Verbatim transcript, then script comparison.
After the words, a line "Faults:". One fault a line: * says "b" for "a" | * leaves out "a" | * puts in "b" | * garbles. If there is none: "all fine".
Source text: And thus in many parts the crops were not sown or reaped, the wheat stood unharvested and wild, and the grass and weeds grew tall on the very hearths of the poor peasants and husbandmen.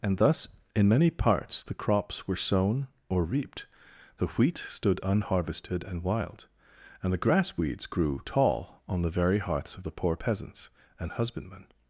And thus in many parts the crops were sown or reaped, the wheat stood unharvested and wild, and the grass weeds grew tall on the very hearths of the poor peasants and husbandmen.
Faults:
* leaves out "not"
* leaves out "and"